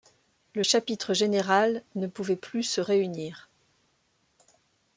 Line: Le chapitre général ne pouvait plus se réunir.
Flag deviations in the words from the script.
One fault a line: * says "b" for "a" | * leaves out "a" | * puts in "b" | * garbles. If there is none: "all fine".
all fine